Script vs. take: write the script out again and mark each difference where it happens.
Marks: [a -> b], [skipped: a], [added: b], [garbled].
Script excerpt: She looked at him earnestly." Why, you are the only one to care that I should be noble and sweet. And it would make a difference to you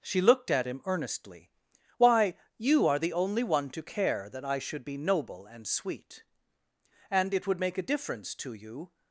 She looked at him earnestly." Why, you are the only one to care that I should be noble and sweet. And it would make a difference to you